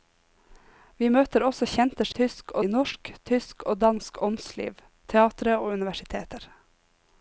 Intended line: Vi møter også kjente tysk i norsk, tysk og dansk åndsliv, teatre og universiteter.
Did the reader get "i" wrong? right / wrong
right